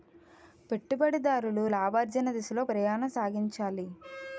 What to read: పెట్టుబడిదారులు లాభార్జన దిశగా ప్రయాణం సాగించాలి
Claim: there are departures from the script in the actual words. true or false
false